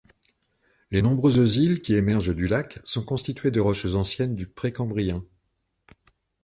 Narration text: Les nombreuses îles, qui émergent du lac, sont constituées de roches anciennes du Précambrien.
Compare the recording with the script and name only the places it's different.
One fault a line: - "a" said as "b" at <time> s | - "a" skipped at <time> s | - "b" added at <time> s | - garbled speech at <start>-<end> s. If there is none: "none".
none